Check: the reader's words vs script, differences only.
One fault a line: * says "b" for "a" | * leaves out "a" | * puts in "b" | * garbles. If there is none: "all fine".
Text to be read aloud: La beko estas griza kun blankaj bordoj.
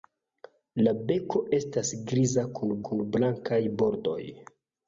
* puts in "kun"